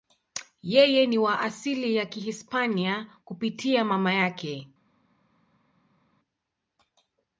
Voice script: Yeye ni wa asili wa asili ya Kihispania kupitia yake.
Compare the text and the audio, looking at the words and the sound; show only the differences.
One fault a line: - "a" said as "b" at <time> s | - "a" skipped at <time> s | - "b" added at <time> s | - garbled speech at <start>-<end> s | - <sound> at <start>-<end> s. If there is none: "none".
- "wa asili" skipped at 1.9 s
- "mama" added at 3.8 s